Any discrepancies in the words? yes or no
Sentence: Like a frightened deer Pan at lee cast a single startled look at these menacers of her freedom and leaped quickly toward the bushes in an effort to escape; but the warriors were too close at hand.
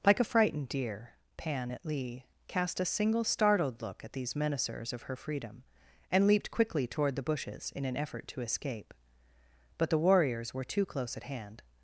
no